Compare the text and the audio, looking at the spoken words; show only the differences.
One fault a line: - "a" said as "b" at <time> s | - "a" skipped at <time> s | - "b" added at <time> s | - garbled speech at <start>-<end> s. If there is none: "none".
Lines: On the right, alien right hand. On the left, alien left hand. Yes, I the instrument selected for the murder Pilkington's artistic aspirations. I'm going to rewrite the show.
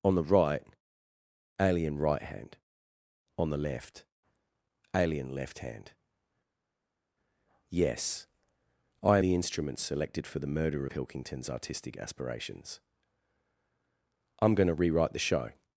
none